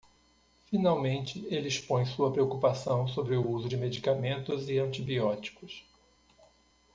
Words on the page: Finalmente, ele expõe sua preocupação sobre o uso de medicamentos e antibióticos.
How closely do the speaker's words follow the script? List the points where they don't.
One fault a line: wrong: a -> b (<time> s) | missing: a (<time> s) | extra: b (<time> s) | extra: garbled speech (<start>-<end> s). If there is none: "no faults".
no faults